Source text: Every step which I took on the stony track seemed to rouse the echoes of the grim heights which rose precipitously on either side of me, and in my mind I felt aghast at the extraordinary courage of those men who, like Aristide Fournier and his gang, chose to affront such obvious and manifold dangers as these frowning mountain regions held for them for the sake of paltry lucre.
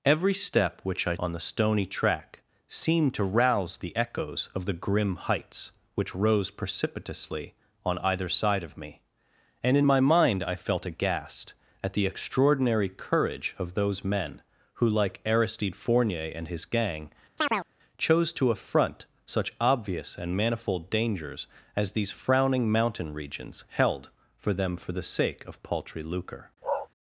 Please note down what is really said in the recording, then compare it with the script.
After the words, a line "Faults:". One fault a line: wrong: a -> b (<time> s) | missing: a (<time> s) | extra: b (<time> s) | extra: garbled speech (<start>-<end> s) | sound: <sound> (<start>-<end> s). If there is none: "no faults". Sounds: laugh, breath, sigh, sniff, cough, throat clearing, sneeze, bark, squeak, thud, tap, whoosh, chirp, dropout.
Every step which I on the stony track seemed to rouse the echoes of the grim heights which rose precipitously on either side of me, and in my mind I felt aghast at the extraordinary courage of those men who, like Aristide Fournier and his gang, chose to affront such obvious and manifold dangers as these frowning mountain regions held for them for the sake of paltry lucre.
Faults:
missing: took (1.1 s)
sound: chirp (17.4-17.7 s)
sound: bark (26.6-26.9 s)